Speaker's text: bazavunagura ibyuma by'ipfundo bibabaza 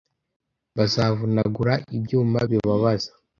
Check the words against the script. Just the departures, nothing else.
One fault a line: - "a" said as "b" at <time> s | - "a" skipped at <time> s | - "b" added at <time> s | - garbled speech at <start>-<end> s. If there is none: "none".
- "by'ipfundo" skipped at 2.4 s